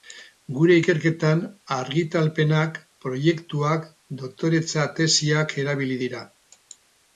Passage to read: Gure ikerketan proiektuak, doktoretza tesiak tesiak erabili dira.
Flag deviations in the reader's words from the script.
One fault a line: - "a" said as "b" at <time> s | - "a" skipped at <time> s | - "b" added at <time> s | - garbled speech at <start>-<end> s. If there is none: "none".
- "argitalpenak" added at 1.8 s
- "tesiak" skipped at 5.6 s